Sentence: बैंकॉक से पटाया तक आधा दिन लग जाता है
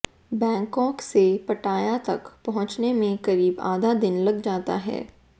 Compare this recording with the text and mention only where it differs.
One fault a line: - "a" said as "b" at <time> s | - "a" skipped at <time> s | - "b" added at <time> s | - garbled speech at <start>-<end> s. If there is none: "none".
- "पहुंचने में करीब" added at 2.5 s